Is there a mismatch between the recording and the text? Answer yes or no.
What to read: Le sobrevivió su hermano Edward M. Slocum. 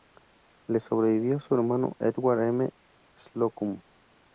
no